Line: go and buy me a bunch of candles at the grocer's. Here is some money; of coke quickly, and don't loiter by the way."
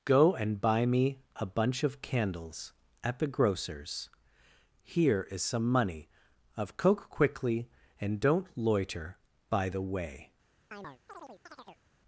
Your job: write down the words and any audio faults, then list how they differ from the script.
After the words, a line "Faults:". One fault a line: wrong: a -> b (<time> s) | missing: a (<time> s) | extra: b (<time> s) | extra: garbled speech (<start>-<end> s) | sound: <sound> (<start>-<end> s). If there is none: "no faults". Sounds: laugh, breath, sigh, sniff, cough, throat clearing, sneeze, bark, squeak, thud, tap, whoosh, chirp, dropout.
go and buy me a bunch of candles at the grocer's. Here is some money; of coke quickly, and don't loiter by the way."
Faults:
sound: chirp (10.7-11.8 s)